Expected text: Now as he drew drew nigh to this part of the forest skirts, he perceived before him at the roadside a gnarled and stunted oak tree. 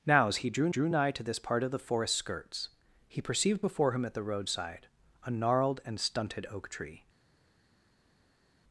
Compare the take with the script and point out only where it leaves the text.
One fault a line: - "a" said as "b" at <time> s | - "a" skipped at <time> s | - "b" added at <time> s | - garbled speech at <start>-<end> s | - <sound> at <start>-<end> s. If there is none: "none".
none